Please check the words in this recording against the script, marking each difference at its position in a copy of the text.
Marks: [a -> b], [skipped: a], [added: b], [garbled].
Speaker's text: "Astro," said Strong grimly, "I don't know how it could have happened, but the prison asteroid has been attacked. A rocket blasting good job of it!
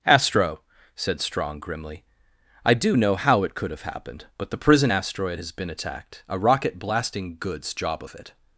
"Astro," said Strong grimly, "I [don't -> do] know how it could have happened, but the prison asteroid has been attacked. A rocket blasting [good -> goods] job of it!